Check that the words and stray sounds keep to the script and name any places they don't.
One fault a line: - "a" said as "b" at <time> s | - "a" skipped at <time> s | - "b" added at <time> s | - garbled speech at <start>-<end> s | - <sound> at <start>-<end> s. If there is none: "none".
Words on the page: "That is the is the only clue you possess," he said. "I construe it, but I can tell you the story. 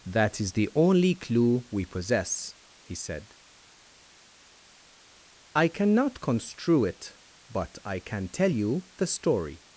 - "is the" skipped at 0.7 s
- "you" said as "we" at 1.7 s
- "cannot" added at 5.7 s